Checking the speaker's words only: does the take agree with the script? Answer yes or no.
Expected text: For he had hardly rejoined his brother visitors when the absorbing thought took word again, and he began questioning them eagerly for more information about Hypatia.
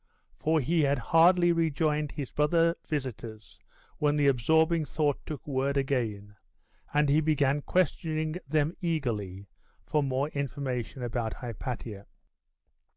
yes